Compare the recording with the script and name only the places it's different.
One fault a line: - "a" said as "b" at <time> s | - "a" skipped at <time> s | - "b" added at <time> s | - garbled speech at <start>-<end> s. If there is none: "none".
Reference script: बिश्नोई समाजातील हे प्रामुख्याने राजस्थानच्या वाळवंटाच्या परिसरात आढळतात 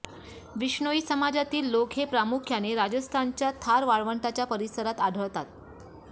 - "लोक" added at 1.7 s
- "थार" added at 3.6 s